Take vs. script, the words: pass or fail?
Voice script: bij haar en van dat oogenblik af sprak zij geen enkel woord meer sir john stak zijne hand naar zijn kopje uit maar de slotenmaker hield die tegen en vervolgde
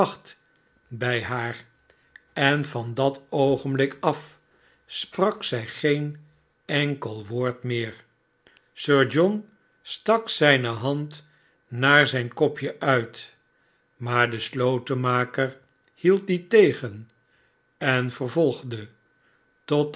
pass